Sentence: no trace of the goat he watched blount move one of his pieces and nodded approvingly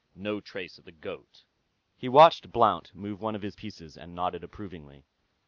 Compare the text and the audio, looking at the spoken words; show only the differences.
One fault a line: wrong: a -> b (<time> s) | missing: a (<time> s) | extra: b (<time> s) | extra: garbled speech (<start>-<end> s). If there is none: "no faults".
no faults